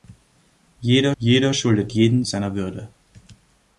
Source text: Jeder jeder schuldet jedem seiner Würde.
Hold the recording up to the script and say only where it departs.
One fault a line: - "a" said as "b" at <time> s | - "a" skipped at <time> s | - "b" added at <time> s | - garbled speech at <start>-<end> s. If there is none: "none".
none